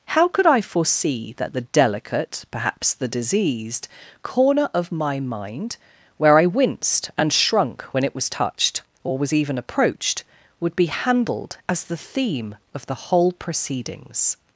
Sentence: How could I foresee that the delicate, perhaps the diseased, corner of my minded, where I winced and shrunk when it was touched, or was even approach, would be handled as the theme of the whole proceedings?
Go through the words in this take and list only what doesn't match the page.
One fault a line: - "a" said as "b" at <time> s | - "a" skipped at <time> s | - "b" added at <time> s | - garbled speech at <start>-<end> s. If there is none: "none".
- "minded" said as "mind" at 5.2 s
- "approach" said as "approached" at 9.6 s